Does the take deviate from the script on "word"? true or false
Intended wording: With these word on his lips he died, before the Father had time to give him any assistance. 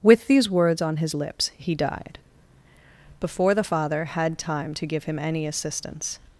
true